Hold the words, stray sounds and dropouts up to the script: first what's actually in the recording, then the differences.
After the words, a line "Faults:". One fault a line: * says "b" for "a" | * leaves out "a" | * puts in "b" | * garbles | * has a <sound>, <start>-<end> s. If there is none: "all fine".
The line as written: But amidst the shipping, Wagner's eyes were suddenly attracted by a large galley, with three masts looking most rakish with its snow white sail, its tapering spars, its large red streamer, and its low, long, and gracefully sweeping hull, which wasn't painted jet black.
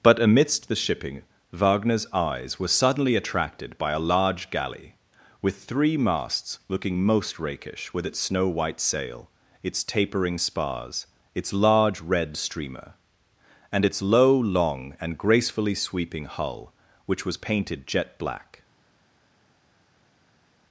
But amidst the shipping, Wagner's eyes were suddenly attracted by a large galley, with three masts looking most rakish with its snow white sail, its tapering spars, its large red streamer, and its low, long, and gracefully sweeping hull, which was painted jet black.
Faults:
* says "was" for "wasn't"